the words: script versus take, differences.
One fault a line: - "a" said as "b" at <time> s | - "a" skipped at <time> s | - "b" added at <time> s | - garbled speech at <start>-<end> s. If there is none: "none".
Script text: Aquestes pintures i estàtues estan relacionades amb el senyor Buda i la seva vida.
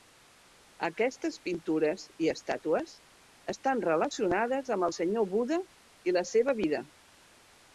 none